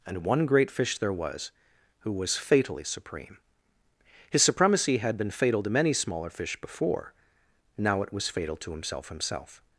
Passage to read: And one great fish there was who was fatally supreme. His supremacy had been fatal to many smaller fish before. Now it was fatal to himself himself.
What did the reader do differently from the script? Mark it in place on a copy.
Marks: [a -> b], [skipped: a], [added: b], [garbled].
And one great fish there was who was fatally supreme. His supremacy had been fatal to many smaller fish before. Now it was fatal to himself himself.